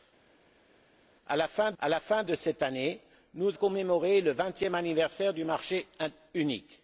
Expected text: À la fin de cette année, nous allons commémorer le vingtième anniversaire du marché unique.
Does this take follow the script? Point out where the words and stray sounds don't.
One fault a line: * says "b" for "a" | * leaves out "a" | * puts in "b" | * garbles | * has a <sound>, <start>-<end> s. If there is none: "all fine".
* puts in "à la fin"
* leaves out "allons"